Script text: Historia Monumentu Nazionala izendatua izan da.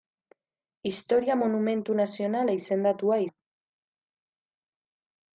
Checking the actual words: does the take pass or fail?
fail